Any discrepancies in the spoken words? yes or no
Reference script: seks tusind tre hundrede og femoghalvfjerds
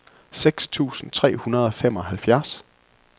no